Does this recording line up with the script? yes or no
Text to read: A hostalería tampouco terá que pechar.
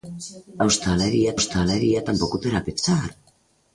no